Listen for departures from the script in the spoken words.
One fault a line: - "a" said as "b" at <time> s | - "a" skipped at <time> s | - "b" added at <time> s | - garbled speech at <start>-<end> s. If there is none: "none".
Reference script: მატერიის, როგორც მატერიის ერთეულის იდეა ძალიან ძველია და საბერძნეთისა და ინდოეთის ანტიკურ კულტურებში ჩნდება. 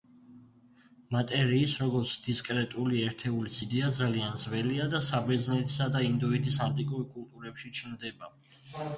- "მატერიის" said as "დისკრეტული" at 2.3 s